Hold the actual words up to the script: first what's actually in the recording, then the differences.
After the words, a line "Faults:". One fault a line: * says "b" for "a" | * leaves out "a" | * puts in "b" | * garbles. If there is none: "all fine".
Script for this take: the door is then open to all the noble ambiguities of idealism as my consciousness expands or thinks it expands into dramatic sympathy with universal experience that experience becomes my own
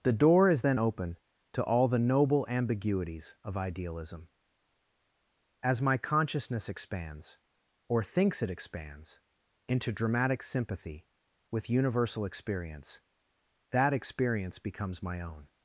the door is then open to all the noble ambiguities of idealism as my consciousness expands or thinks it expands into dramatic sympathy with universal experience that experience becomes my own
Faults:
all fine